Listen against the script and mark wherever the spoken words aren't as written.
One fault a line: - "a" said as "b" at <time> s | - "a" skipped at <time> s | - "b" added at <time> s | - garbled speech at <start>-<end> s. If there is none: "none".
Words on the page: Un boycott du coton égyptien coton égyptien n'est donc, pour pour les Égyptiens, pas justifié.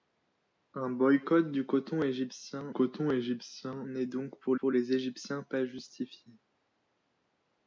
none